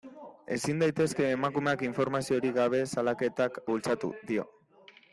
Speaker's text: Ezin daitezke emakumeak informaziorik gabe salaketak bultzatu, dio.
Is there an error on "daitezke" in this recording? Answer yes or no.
no